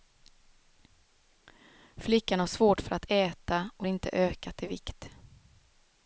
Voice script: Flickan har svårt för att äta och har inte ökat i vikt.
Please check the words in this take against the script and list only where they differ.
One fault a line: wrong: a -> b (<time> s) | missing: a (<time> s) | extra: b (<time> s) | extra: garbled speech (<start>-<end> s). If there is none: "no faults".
missing: har (3.9 s)